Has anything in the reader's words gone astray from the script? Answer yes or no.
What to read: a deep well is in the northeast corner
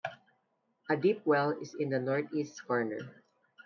no